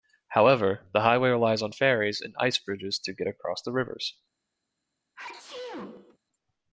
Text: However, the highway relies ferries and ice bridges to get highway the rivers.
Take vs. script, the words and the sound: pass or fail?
fail